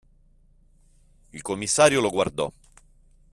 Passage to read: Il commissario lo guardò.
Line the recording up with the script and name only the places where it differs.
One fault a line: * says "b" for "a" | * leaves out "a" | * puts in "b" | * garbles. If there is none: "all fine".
all fine